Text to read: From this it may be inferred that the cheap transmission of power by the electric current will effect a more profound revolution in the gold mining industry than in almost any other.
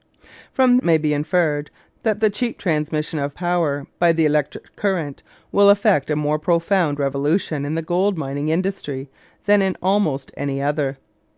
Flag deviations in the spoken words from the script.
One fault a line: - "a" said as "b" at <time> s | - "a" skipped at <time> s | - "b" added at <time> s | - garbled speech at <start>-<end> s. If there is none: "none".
- "this" skipped at 0.8 s